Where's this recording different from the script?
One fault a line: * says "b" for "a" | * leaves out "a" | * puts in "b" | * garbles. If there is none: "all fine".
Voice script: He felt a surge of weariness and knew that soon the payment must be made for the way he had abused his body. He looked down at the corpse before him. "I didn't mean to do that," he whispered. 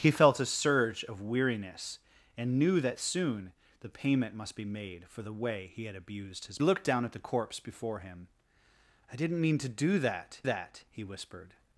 * leaves out "body He"
* puts in "that"